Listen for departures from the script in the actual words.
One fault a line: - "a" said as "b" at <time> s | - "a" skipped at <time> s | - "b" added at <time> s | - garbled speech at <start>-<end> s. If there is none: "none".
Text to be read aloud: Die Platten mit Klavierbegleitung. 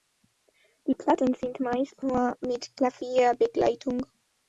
- "sind meist nur" added at 1.4 s